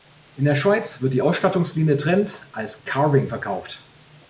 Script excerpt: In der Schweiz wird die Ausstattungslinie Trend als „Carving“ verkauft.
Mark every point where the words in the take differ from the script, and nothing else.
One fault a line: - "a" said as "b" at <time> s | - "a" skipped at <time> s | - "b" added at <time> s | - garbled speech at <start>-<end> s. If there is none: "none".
none